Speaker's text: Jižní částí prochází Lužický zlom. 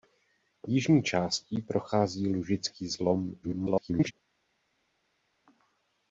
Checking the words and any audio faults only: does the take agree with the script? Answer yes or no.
no